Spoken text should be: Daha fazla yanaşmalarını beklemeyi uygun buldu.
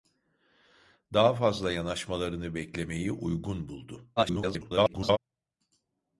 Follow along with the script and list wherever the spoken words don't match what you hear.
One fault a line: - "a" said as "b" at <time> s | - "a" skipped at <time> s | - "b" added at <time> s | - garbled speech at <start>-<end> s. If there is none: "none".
- garbled speech at 4.2-5.2 s